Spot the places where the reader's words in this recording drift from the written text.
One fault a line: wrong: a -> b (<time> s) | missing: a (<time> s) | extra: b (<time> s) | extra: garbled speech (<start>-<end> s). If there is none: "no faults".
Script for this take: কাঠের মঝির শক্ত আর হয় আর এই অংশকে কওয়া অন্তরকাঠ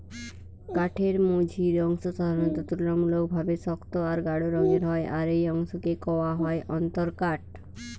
extra: অংশ সাধারণত তুলনামূলকভাবে (1.8 s)
extra: গাঢ় রঙের (4.3 s)
extra: হয় (6.4 s)